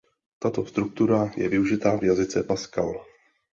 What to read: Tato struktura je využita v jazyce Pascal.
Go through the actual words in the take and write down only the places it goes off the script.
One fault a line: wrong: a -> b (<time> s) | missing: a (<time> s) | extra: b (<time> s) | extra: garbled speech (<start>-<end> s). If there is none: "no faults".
no faults